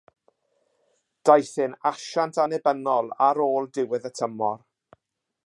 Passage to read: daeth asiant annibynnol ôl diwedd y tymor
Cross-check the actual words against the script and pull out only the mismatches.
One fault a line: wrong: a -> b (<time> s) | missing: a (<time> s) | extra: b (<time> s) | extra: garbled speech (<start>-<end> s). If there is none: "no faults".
extra: e'n (1.6 s)
extra: ar (3.3 s)